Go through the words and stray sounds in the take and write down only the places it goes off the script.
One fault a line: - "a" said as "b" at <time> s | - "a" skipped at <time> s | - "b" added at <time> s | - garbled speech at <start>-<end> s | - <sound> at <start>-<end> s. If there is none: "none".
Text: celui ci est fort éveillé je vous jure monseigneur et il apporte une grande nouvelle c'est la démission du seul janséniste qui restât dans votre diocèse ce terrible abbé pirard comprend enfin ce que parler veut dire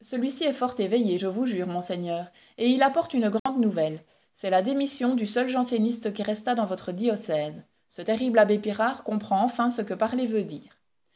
- dropout at 3.4-3.5 s